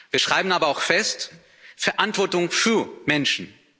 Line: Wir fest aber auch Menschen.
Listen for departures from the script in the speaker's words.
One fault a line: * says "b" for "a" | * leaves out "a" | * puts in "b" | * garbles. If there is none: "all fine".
* says "schreiben" for "fest"
* puts in "fest Verantwortung für"